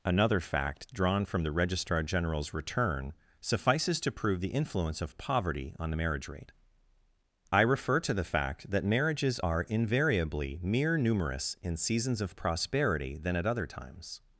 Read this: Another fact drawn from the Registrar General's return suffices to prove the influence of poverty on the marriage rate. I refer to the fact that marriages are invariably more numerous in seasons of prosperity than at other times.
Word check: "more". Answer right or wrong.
wrong